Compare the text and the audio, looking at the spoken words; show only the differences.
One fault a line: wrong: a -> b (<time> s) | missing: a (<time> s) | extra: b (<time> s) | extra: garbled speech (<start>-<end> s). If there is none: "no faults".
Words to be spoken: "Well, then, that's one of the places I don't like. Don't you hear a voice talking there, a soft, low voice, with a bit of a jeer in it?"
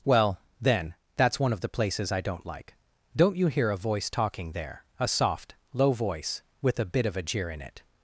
no faults